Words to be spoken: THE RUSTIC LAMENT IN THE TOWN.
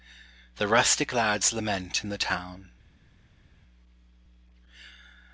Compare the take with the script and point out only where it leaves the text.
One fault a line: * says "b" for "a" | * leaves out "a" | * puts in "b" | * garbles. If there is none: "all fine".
* puts in "LAD'S"